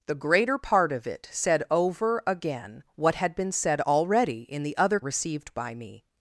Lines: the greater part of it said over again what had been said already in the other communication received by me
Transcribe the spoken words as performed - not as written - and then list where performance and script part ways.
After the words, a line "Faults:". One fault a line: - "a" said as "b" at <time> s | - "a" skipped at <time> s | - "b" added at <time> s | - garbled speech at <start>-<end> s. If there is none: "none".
the greater part of it said over again what had been said already in the other received by me
Faults:
- "communication" skipped at 5.0 s